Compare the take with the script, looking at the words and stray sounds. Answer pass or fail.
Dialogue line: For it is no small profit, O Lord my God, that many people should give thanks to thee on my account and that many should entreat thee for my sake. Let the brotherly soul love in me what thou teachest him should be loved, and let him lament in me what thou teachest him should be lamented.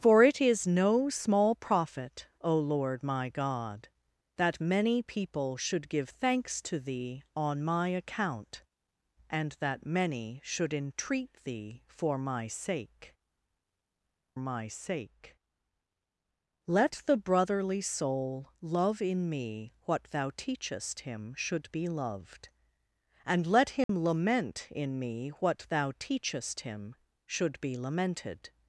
fail